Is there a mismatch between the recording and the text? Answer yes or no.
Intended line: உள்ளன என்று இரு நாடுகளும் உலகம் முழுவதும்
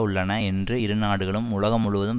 no